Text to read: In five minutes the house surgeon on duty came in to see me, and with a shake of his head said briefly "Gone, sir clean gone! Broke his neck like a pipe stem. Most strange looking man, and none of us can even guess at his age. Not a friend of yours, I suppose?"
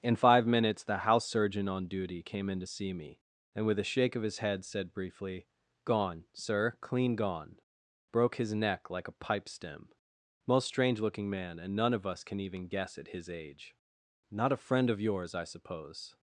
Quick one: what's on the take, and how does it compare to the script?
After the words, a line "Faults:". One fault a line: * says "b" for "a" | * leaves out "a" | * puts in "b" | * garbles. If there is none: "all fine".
In five minutes the house surgeon on duty came in to see me, and with a shake of his head said briefly "Gone, sir clean gone! Broke his neck like a pipe stem. Most strange looking man, and none of us can even guess at his age. Not a friend of yours, I suppose?"
Faults:
all fine